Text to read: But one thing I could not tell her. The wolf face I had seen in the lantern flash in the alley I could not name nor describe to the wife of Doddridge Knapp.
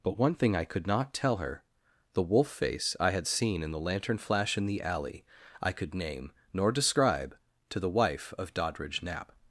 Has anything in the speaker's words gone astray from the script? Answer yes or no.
yes